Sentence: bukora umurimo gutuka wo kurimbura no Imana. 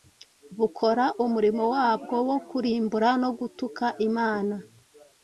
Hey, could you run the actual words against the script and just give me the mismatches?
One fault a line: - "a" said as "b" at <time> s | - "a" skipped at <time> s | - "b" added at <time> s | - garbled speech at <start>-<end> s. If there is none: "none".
- "gutuka" said as "wabwo" at 1.7 s
- "gutuka" added at 3.4 s